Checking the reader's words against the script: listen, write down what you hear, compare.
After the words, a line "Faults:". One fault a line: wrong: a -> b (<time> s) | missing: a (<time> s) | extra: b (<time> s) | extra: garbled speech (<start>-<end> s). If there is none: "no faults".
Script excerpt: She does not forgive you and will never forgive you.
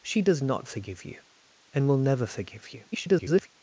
She does not forgive you and will never forgive you. [garbled]
Faults:
extra: garbled speech (2.9-3.5 s)